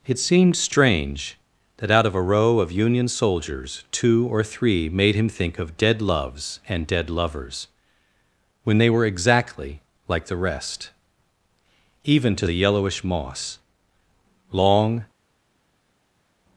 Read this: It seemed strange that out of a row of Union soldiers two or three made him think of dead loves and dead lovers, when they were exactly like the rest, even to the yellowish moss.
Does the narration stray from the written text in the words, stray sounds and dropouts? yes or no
yes